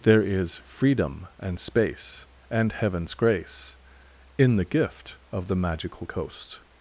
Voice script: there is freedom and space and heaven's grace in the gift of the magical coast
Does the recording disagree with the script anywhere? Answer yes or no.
no